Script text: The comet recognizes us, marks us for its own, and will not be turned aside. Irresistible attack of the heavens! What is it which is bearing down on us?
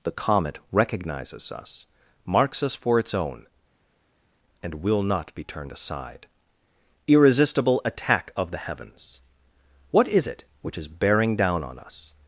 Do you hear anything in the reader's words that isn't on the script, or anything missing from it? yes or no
no